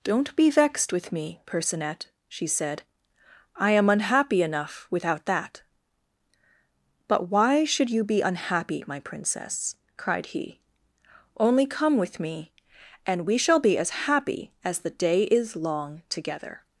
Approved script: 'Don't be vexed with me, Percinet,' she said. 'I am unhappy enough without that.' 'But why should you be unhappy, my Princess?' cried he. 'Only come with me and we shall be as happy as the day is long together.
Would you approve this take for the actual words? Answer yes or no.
yes